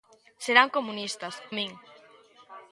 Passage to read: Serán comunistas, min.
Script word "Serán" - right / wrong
right